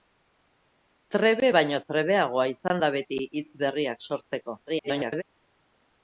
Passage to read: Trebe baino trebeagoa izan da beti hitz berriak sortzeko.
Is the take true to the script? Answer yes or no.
no